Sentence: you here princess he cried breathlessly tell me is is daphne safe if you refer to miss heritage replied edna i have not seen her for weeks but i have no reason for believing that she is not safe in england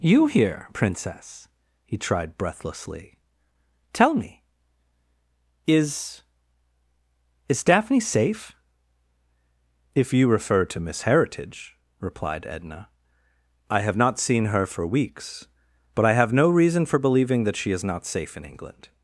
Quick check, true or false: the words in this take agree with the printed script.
false